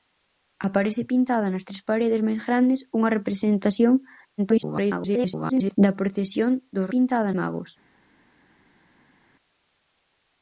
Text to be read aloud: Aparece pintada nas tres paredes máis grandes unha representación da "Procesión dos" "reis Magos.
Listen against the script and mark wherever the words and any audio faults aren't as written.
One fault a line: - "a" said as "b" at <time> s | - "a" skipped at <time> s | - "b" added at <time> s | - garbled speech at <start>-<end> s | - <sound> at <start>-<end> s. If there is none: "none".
- garbled speech at 4.4-5.8 s
- "reis" said as "pintada" at 6.9 s